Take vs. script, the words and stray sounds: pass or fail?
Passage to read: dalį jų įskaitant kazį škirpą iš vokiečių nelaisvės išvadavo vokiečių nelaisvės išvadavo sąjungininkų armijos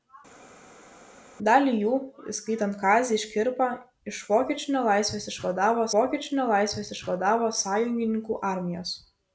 pass